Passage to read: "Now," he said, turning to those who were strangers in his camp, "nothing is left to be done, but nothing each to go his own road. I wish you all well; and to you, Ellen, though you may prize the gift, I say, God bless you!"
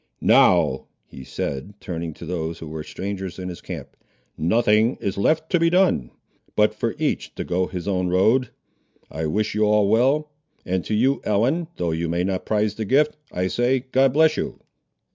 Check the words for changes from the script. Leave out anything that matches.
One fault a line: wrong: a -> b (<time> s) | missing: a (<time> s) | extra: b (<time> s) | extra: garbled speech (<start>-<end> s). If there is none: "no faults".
wrong: nothing -> for (6.7 s)
extra: not (12.2 s)